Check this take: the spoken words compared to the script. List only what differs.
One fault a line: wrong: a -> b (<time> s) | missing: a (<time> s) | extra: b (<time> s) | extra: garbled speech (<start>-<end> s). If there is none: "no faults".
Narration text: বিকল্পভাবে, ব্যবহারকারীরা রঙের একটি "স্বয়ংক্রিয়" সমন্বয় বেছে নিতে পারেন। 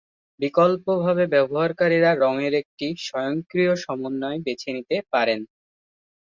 no faults